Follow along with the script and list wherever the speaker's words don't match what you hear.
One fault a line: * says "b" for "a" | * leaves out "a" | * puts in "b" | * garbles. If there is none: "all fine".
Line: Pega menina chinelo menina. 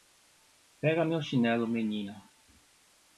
* says "meu" for "menina"